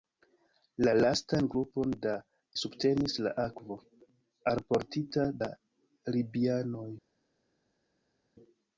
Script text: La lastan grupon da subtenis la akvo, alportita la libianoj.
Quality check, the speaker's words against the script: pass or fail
pass